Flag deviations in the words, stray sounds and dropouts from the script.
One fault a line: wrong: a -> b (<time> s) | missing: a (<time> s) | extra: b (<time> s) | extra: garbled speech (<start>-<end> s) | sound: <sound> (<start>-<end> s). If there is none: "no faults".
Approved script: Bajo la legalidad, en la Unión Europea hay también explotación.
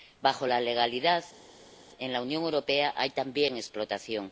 no faults